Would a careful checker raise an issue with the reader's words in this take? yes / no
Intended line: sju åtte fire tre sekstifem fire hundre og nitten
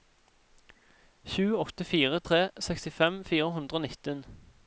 no